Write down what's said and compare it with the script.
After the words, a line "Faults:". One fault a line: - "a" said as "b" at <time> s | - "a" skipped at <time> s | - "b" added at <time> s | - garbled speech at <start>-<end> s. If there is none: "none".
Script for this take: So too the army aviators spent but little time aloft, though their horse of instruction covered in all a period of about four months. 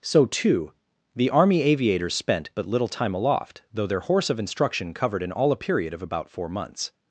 So too the army aviators spent but little time aloft, though their horse of instruction covered in all a period of about four months.
Faults:
none